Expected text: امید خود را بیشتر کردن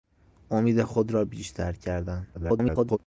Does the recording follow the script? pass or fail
fail